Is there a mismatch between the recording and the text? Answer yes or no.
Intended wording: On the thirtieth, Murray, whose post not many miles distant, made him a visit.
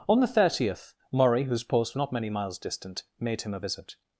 no